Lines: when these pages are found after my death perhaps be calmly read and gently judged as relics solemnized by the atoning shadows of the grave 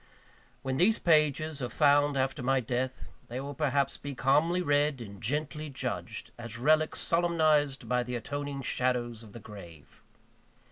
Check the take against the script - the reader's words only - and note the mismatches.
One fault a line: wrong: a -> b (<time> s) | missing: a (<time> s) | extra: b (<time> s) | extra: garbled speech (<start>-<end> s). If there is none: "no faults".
extra: they will (3.3 s)